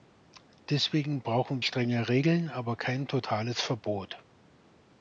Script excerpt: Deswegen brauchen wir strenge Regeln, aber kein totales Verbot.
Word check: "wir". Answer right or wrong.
wrong